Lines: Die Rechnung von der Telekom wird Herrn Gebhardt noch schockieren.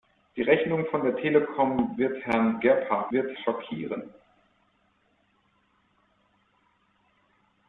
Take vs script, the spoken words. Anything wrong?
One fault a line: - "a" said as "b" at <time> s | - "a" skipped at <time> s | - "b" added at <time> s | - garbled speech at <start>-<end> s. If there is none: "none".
- "noch" said as "wird" at 3.1 s